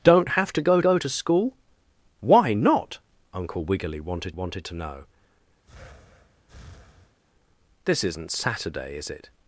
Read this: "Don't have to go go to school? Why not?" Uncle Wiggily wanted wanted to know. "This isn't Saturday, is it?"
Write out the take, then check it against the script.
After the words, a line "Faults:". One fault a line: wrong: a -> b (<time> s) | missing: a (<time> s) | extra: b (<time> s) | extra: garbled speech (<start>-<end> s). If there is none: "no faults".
"Don't have to go go to school? Why not?" Uncle Wiggily wanted wanted to know. "This isn't Saturday, is it?"
Faults:
no faults